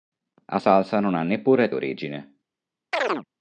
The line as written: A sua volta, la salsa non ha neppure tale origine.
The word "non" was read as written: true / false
true